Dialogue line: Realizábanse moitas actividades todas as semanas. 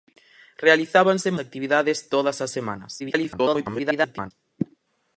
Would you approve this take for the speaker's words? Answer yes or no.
no